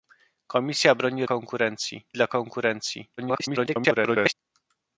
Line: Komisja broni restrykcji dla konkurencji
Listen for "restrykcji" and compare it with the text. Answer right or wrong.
wrong